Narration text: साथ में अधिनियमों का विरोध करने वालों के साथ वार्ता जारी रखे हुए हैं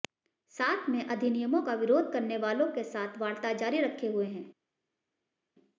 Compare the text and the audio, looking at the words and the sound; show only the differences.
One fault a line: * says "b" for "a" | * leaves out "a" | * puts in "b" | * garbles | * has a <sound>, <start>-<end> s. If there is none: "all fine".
all fine